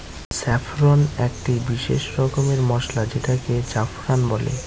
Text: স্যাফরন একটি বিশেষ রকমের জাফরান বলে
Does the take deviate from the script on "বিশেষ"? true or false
false